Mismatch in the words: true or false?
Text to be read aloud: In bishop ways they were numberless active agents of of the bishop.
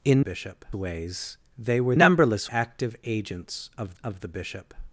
false